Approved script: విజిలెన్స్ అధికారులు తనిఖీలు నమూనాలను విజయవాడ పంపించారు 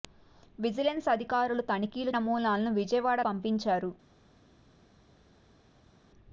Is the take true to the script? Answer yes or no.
yes